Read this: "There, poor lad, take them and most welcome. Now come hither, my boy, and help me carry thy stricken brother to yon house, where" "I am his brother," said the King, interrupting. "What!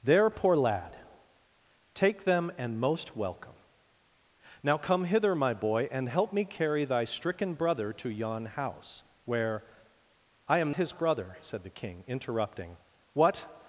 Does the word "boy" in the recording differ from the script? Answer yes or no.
no